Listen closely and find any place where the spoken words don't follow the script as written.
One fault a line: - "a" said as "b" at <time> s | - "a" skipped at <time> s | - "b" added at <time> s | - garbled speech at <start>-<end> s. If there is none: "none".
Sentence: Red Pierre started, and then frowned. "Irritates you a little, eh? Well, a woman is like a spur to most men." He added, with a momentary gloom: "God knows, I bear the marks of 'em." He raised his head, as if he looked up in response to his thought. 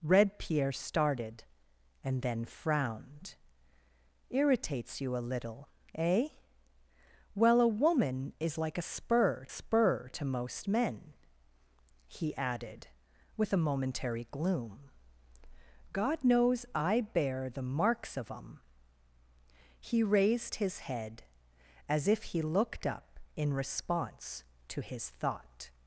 - "spur" added at 9.5 s